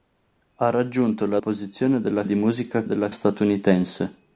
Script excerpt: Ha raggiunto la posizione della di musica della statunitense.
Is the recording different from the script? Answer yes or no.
no